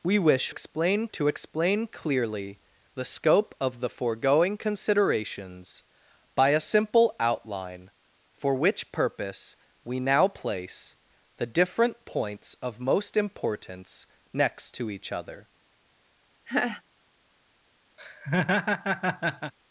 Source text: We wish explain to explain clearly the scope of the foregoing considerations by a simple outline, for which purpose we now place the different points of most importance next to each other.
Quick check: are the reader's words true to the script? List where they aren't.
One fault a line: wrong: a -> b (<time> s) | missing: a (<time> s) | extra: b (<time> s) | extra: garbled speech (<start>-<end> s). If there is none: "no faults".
no faults